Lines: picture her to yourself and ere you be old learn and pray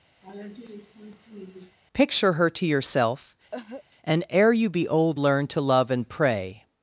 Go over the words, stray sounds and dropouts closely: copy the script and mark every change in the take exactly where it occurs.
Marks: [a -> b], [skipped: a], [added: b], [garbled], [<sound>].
[laugh] picture her to yourself [cough] and ere you be old learn [added: to love] and pray